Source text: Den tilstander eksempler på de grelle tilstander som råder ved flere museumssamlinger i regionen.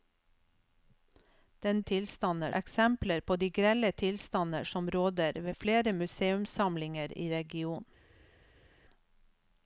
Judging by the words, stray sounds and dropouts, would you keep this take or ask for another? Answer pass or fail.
pass